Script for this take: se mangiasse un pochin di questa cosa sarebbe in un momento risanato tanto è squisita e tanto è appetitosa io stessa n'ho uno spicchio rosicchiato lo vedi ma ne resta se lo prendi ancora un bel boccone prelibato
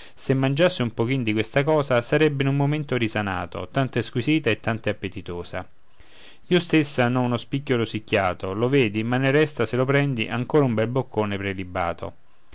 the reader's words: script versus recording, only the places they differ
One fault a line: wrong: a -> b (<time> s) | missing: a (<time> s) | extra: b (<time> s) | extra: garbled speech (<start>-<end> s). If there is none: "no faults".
no faults